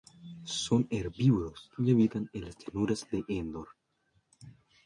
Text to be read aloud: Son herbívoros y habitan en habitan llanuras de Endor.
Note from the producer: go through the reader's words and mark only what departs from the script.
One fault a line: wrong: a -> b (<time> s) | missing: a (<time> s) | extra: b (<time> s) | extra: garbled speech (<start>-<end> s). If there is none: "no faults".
wrong: habitan -> las (2.4 s)